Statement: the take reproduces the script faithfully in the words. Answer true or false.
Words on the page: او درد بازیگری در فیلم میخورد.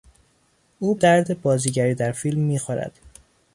true